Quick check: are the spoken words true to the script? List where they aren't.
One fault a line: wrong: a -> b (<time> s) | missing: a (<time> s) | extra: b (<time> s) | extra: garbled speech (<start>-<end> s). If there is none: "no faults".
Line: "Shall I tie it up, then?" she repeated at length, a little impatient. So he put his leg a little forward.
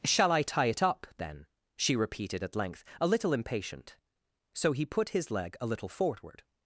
no faults